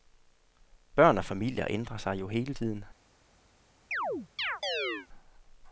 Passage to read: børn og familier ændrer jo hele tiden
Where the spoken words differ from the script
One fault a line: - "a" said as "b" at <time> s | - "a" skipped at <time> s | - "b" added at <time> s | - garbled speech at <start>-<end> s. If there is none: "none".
- "sig" added at 2.0 s